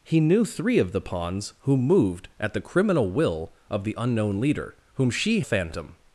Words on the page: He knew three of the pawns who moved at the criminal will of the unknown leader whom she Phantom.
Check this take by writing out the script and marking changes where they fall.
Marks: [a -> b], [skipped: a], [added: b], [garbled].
He knew three of the pawns who moved at the criminal will of the unknown leader whom she Phantom.